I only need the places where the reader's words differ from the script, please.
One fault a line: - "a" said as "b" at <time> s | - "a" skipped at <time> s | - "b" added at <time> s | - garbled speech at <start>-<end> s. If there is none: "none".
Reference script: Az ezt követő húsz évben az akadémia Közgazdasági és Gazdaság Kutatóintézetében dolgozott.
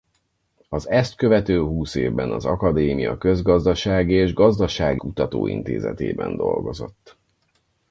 none